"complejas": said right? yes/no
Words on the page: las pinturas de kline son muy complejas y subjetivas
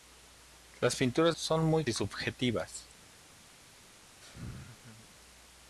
no